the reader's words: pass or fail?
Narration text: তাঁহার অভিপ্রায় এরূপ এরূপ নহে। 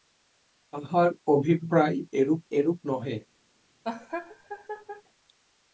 pass